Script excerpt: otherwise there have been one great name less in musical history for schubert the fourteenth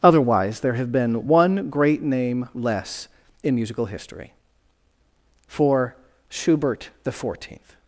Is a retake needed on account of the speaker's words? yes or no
no